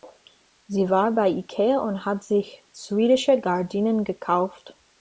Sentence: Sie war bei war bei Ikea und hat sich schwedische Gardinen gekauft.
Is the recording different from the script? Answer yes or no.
yes